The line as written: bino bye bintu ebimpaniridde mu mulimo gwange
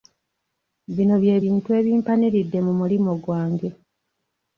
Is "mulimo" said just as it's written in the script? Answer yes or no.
yes